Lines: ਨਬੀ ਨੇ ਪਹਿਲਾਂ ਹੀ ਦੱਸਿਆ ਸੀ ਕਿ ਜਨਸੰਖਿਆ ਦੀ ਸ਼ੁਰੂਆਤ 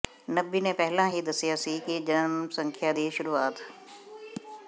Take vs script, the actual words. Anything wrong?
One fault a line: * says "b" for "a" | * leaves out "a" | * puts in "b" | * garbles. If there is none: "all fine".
all fine